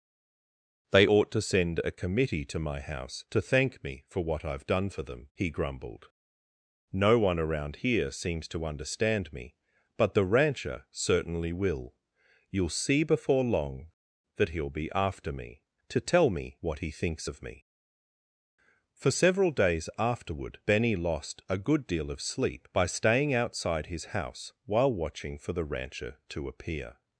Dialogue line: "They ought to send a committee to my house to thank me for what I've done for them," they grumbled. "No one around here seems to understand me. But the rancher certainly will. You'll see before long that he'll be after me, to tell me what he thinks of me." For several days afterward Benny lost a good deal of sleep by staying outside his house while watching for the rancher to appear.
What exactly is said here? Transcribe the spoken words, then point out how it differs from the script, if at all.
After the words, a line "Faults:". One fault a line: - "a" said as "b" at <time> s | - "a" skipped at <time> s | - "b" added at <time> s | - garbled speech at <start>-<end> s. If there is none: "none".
"They ought to send a committee to my house to thank me for what I've done for them," he grumbled. "No one around here seems to understand me. But the rancher certainly will. You'll see before long that he'll be after me, to tell me what he thinks of me." For several days afterward Benny lost a good deal of sleep by staying outside his house while watching for the rancher to appear.
Faults:
- "they" said as "he" at 5.3 s